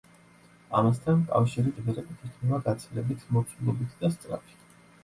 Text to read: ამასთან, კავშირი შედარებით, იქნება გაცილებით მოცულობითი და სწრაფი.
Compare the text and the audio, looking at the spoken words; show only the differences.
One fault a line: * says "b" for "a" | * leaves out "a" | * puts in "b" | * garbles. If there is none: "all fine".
all fine